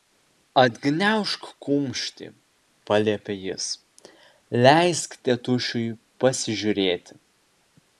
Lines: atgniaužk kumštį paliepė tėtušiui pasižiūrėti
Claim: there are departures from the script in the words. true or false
true